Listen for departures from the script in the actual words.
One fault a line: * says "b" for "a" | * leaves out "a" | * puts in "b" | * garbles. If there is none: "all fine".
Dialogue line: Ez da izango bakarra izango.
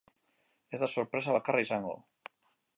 * says "sorpresa" for "izango"